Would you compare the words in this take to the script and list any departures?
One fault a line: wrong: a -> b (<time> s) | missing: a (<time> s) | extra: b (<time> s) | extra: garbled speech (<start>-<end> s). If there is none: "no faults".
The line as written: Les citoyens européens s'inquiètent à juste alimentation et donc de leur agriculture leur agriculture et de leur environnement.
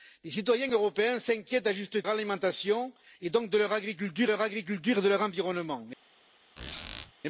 no faults